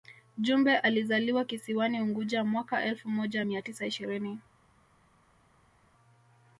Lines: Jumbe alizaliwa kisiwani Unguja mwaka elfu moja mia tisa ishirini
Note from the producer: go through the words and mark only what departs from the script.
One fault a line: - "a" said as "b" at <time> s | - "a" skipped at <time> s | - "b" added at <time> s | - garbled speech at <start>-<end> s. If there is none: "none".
none